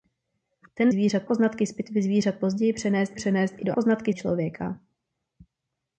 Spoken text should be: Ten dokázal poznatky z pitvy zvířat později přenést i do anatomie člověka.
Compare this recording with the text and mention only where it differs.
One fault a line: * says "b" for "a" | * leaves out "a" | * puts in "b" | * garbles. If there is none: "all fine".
* says "zvířat" for "dokázal"
* puts in "přenést"
* says "poznatky" for "anatomie"